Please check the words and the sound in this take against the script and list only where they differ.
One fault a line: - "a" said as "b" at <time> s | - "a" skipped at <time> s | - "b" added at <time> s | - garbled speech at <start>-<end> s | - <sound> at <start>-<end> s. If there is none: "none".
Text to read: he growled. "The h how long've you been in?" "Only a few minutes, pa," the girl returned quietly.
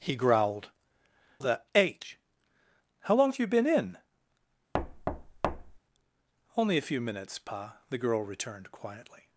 - thud at 4.7-5.8 s